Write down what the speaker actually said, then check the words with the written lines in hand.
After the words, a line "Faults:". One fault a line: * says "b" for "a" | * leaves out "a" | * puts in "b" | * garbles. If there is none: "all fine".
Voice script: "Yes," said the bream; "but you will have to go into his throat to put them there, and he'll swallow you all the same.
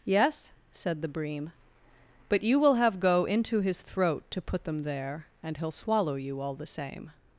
"Yes," said the bream; "but you will have go into his throat to put them there, and he'll swallow you all the same.
Faults:
* leaves out "to"